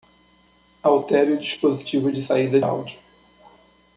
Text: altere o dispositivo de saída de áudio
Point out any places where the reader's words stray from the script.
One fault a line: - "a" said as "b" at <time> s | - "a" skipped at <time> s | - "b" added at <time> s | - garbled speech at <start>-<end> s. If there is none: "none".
- "de" skipped at 2.6 s